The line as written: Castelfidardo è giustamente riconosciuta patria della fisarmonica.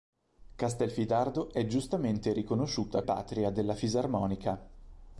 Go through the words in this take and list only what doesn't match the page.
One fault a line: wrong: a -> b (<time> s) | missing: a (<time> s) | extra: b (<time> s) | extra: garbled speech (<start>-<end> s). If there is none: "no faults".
no faults